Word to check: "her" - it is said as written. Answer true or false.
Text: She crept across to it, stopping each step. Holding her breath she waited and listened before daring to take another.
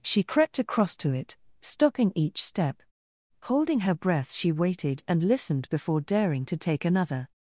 true